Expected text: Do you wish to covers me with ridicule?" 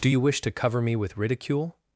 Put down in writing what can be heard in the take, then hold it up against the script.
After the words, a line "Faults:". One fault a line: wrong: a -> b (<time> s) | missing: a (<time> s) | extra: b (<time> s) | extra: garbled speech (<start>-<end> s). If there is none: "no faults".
Do you wish to cover me with ridicule?"
Faults:
wrong: covers -> cover (0.5 s)